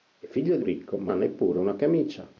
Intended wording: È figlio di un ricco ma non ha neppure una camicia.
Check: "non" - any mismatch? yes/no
yes